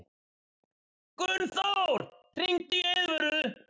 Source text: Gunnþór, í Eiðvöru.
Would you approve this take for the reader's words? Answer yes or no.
no